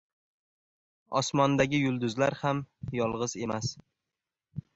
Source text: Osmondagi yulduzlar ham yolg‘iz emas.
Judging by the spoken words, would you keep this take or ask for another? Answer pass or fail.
pass